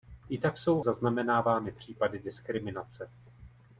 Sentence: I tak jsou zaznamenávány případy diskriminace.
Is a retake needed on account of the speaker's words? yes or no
no